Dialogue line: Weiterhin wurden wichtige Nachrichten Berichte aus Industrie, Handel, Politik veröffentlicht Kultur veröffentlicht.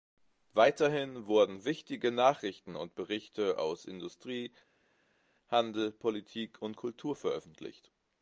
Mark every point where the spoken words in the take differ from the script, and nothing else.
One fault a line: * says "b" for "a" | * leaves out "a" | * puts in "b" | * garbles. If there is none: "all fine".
* puts in "und"
* says "und" for "veröffentlicht"